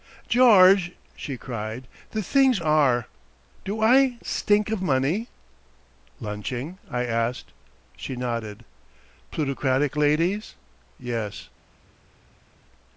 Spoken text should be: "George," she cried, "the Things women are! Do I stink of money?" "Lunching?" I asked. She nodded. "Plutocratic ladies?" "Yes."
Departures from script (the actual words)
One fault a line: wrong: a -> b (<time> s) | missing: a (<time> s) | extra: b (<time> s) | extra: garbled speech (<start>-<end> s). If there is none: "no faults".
missing: women (2.6 s)